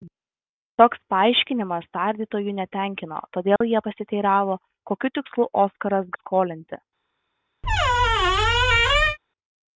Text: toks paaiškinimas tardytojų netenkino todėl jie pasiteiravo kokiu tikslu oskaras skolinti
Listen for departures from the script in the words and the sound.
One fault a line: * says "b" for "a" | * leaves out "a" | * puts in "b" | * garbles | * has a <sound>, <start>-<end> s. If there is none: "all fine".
* has a dropout, 3.6-3.6 s
* has a squeak, 7.6-9.2 s